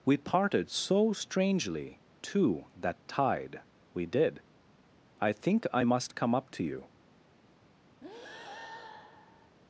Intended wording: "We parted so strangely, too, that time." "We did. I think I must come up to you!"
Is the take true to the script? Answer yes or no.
no